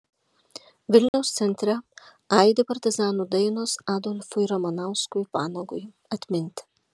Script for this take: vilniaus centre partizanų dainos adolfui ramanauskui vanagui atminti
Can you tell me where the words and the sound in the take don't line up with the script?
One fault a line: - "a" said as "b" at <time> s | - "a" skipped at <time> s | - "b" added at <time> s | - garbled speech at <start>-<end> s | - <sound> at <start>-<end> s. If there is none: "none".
- dropout at 1.1-1.1 s
- "aidi" added at 2.4 s